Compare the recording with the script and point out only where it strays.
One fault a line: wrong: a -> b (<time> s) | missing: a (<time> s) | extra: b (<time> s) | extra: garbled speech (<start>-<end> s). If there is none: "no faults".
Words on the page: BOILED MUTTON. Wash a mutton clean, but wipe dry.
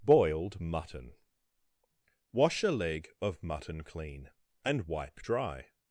extra: leg of (2.7 s)
wrong: but -> and (4.6 s)